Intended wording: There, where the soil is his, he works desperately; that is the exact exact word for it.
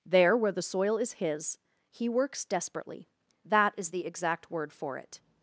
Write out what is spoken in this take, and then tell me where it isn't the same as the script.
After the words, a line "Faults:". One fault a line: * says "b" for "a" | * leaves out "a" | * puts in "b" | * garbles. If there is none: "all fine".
There, where the soil is his, he works desperately; that is the exact word for it.
Faults:
* leaves out "exact"